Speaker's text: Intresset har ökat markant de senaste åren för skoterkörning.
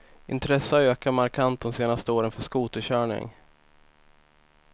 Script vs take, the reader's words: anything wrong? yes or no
no